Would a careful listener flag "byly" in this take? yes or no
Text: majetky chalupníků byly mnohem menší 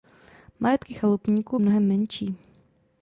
yes